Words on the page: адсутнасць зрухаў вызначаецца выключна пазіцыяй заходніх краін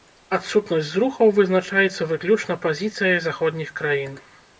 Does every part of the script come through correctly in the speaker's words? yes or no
yes